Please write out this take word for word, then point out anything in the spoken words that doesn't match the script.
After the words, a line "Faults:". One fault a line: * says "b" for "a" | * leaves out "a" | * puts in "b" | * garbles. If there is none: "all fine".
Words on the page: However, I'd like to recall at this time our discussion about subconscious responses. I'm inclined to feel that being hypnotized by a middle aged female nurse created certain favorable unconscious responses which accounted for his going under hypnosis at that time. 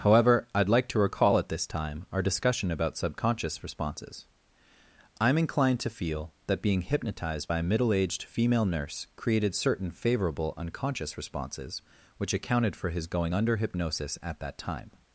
However, I'd like to recall at this time our discussion about subconscious responses. I'm inclined to feel that being hypnotized by a middle aged female nurse created certain favorable unconscious responses which accounted for his going under hypnosis at that time.
Faults:
all fine